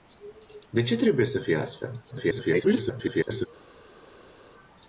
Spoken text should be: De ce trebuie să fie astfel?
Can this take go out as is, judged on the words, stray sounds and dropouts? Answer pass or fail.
fail